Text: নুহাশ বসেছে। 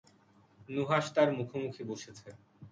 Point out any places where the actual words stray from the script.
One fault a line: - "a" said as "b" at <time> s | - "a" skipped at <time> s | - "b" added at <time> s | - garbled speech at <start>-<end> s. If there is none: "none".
- "তার মুখোমুখি" added at 1.1 s